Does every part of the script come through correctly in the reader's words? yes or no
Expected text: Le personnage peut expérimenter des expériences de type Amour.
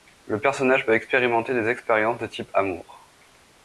yes